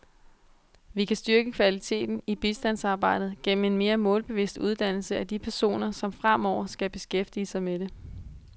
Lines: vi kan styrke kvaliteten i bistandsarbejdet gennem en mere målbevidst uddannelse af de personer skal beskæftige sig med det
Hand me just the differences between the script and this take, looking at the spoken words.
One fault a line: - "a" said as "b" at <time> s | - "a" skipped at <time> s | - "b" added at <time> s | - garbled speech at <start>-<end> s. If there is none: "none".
- "som fremover" added at 5.9 s